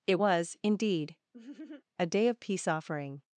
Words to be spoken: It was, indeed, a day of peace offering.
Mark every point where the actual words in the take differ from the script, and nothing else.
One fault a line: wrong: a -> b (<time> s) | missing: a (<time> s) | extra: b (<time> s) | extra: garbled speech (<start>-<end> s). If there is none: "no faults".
no faults